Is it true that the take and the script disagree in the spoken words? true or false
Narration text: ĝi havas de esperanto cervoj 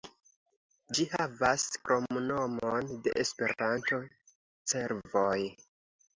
true